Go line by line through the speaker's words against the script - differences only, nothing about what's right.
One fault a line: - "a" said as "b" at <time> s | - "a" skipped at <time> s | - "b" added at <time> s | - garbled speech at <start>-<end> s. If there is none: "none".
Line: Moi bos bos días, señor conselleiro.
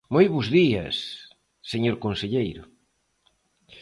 - "bos" skipped at 0.5 s